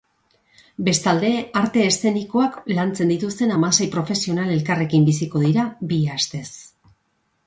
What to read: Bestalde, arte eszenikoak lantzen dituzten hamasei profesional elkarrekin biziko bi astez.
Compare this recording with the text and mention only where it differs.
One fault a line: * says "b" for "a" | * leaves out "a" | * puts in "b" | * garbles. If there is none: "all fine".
* puts in "dira"